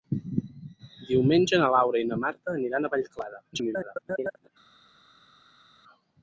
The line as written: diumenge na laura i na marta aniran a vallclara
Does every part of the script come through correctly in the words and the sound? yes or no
no